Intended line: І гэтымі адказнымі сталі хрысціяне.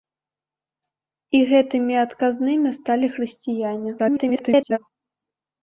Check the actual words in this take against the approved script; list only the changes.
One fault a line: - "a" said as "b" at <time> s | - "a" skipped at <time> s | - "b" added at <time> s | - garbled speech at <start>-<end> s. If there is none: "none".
- garbled speech at 4.0-4.8 s